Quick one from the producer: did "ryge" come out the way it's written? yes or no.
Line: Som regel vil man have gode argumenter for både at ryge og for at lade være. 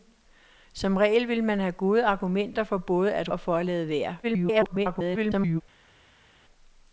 no